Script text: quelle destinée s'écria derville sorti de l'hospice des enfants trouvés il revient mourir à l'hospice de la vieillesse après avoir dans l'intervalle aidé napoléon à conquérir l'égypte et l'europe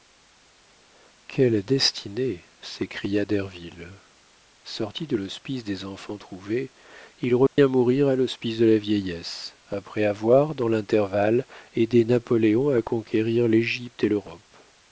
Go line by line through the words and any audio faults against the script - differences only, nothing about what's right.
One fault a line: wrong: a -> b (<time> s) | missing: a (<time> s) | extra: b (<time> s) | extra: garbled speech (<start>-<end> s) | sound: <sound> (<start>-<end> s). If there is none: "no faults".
sound: dropout (7.5-7.6 s)